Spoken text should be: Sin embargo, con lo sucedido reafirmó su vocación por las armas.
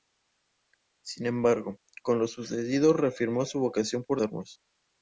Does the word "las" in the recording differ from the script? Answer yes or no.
yes